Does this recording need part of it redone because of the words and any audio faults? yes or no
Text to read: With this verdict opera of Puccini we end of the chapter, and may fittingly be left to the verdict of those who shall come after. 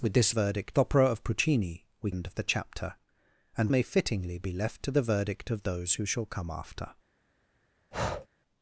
yes